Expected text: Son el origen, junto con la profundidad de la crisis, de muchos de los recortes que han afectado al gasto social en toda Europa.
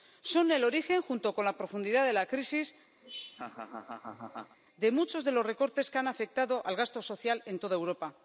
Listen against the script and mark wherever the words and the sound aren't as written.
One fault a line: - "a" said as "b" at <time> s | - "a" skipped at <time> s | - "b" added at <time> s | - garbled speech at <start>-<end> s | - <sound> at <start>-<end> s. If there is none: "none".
- laugh at 3.0-4.6 s